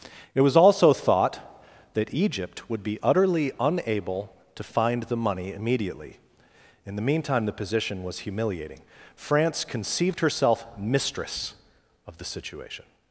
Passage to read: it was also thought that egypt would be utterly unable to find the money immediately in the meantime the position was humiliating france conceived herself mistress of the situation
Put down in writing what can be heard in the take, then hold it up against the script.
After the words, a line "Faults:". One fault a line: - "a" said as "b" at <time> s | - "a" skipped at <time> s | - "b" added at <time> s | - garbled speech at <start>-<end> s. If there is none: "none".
it was also thought that egypt would be utterly unable to find the money immediately in the meantime the position was humiliating france conceived herself mistress of the situation
Faults:
none